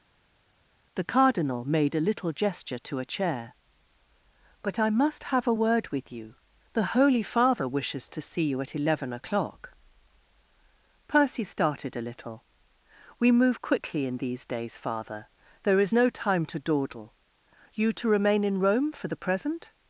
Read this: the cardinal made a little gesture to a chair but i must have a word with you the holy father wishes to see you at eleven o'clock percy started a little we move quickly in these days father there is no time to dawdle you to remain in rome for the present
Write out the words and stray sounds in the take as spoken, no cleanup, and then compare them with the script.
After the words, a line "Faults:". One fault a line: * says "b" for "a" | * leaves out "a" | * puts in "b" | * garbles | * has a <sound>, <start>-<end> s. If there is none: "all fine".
the cardinal made a little gesture to a chair but i must have a word with you the holy father wishes to see you at eleven o'clock percy started a little we move quickly in these days father there is no time to dawdle you to remain in rome for the present
Faults:
all fine